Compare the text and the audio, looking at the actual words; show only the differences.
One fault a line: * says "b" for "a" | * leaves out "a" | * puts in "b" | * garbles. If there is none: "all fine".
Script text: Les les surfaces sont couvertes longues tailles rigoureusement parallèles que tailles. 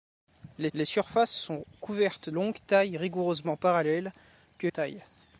all fine